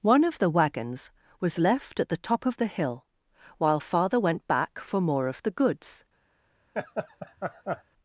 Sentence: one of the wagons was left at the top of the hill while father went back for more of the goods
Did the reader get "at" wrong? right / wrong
right